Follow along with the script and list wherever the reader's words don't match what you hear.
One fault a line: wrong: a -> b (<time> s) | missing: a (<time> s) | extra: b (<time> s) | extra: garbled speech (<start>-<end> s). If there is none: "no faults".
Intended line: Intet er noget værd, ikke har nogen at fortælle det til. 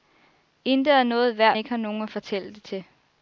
no faults